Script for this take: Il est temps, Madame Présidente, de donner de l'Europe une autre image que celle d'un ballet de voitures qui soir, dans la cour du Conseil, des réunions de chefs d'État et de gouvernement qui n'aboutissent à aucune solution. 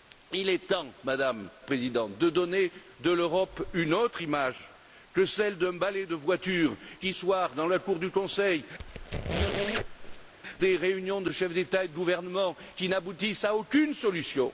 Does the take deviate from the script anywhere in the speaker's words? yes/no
no